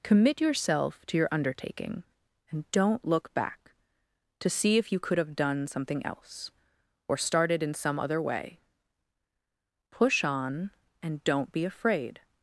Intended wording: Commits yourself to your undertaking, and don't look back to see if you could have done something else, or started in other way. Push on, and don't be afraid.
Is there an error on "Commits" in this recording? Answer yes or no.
yes